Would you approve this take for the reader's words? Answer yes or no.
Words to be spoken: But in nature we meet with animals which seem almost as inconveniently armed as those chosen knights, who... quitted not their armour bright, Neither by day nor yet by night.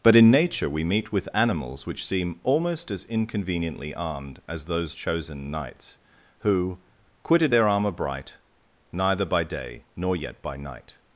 no